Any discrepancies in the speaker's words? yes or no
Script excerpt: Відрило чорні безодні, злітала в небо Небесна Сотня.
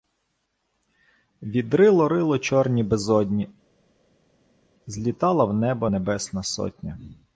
yes